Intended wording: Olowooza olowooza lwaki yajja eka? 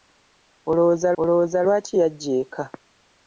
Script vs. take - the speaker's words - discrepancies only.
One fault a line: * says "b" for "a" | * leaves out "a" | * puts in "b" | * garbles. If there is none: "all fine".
all fine